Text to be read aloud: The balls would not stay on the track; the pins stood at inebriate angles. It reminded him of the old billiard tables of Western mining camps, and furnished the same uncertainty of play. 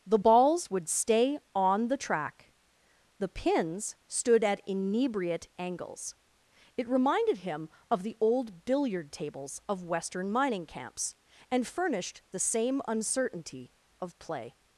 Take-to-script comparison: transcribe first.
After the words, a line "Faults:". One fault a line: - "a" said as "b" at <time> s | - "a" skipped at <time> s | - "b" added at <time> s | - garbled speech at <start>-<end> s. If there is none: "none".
The balls would stay on the track; the pins stood at inebriate angles. It reminded him of the old billiard tables of Western mining camps, and furnished the same uncertainty of play.
Faults:
- "not" skipped at 0.9 s